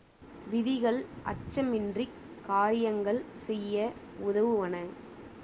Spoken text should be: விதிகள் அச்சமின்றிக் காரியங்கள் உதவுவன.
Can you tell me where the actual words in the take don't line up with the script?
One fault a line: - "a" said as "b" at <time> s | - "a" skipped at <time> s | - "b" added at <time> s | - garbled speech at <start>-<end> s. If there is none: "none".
- "செய்ய" added at 3.4 s